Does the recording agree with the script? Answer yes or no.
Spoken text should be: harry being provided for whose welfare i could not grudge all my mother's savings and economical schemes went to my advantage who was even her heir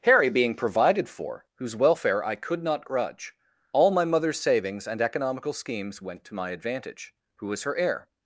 no